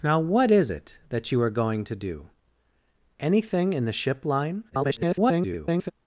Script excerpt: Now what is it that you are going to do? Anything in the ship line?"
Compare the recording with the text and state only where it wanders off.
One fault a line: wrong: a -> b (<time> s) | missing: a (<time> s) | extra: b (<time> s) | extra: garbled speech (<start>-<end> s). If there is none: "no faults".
extra: garbled speech (4.7-5.9 s)